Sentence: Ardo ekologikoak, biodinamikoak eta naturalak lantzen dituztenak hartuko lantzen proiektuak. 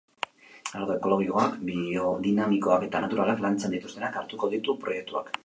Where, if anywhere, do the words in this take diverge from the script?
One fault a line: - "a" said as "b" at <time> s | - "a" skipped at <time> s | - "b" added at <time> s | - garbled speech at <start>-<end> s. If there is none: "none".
- "lantzen" said as "ditu" at 4.6 s